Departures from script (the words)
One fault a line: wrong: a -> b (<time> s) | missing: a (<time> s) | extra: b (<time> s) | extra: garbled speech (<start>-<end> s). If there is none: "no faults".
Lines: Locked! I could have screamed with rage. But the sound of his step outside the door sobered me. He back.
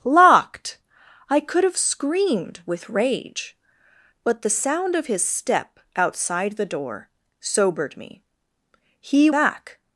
no faults